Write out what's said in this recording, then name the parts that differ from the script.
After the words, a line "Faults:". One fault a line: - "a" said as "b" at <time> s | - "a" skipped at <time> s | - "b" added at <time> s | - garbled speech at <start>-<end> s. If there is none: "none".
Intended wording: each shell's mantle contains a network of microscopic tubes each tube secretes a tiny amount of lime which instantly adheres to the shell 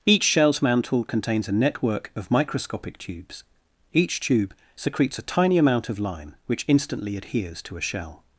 each shell's mantle contains a network of microscopic tubes each tube secretes a tiny amount of lime which instantly adheres to a shell
Faults:
- "the" said as "a" at 7.8 s